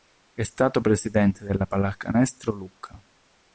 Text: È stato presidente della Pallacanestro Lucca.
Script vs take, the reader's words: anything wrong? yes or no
no